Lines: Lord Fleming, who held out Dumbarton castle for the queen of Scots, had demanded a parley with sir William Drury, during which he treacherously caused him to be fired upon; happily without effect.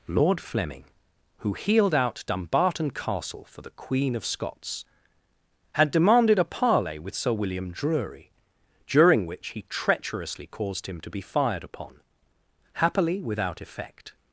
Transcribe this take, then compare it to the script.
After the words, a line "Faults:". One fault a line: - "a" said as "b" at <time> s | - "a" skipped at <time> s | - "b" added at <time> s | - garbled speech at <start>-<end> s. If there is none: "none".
Lord Fleming, who healed out Dumbarton castle for the queen of Scots, had demanded a parley with sir William Drury, during which he treacherously caused him to be fired upon; happily without effect.
Faults:
- "held" said as "healed" at 1.5 s